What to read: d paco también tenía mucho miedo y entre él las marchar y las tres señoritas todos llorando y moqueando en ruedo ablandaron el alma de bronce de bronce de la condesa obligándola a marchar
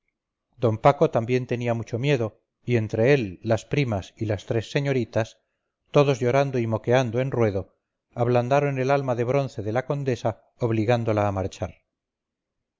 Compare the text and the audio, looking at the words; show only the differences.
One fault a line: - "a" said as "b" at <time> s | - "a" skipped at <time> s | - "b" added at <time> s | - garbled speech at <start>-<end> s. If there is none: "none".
- "marchar" said as "primas" at 3.6 s
- "bronce de" skipped at 9.7 s